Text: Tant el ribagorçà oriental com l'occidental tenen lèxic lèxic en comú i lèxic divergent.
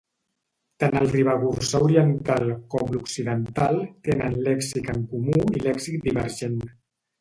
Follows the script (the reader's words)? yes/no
no